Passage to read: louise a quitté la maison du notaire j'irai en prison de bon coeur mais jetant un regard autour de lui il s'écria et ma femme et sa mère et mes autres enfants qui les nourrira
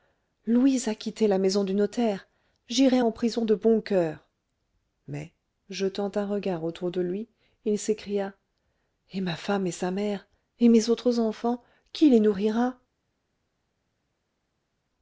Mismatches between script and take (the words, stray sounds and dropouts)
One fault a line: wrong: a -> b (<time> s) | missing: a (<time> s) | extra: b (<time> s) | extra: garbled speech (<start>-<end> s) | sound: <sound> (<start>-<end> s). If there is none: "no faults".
no faults